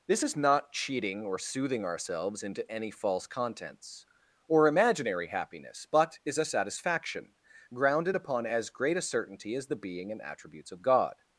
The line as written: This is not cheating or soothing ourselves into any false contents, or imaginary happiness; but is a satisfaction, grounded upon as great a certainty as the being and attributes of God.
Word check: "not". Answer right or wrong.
right